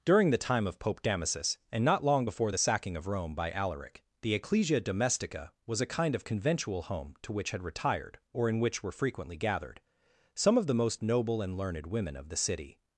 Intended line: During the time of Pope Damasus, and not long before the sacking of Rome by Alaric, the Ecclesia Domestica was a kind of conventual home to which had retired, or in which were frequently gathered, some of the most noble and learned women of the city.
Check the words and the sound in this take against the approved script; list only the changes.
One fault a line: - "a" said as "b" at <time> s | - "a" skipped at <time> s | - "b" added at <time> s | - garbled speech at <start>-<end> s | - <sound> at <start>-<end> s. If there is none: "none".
none